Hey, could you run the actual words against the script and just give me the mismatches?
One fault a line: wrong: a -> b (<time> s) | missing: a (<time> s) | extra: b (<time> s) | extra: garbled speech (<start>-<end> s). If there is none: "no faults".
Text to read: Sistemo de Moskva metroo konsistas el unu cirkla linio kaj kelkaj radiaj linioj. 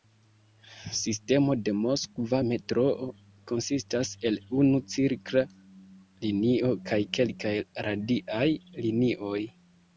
no faults